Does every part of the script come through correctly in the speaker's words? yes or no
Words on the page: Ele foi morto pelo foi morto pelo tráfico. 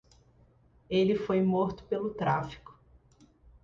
no